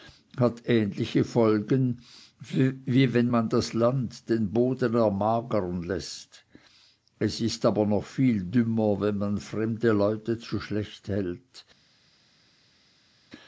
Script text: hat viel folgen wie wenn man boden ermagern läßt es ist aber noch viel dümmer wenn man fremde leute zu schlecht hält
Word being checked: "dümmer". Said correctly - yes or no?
yes